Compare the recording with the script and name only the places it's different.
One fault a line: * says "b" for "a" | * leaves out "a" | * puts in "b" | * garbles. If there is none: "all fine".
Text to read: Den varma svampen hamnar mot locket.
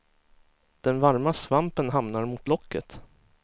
all fine